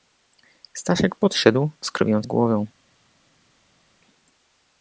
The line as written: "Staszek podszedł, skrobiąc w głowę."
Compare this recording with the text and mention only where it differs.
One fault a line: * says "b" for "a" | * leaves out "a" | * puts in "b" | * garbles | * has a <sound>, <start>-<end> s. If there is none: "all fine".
all fine